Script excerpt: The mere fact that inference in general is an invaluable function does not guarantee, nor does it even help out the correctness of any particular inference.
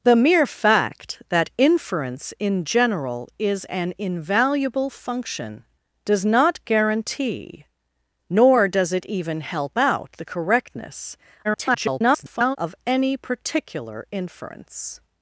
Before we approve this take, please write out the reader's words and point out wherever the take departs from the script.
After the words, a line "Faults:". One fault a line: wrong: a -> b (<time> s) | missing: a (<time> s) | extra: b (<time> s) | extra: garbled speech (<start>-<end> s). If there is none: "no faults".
The mere fact that inference in general is an invaluable function does not guarantee, nor does it even help out the correctness [garbled] of any particular inference.
Faults:
extra: garbled speech (11.4-12.6 s)